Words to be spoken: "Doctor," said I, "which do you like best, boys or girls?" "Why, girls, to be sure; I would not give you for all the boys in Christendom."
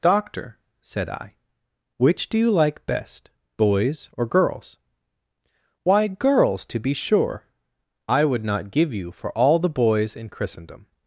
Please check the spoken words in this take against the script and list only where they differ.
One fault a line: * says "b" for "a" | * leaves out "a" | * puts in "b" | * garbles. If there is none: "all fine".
all fine